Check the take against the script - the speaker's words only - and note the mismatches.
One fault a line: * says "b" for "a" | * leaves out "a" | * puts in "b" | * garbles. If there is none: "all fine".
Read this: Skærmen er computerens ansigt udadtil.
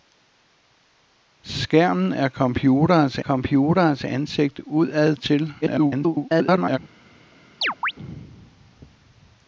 * puts in "computerens"
* garbles